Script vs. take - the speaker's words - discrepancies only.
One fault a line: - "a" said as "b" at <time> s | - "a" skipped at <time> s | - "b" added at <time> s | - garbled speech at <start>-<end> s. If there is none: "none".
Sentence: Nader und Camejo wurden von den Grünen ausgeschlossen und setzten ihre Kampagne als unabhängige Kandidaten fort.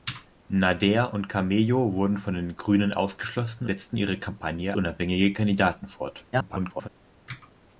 - "und" skipped at 3.7 s
- "als" skipped at 4.7 s
- garbled speech at 6.3-6.9 s